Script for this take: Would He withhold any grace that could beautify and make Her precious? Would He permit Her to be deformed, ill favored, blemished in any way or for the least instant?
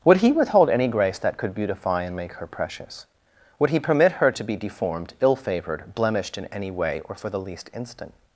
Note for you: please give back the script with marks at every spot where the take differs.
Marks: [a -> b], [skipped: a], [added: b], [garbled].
Would He withhold any grace that could beautify and make Her precious? Would He permit Her to be deformed, ill favored, blemished in any way or for the least instant?